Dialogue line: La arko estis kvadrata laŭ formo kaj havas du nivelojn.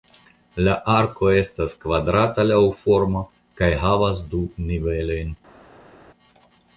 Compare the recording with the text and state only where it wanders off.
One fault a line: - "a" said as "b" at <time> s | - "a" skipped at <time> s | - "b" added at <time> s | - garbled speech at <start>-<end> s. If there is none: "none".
- "estis" said as "estas" at 1.4 s